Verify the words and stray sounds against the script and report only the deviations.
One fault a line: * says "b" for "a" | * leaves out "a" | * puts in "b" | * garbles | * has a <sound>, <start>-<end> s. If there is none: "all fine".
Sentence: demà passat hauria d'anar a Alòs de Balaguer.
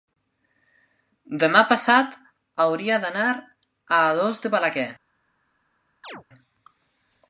* has a chirp, 6.0-6.2 s